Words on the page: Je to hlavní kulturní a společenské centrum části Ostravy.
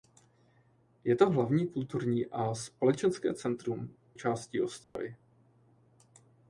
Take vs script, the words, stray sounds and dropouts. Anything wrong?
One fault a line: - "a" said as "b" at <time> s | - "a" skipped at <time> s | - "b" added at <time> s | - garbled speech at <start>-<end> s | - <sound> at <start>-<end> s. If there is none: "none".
- dropout at 4.8-5.0 s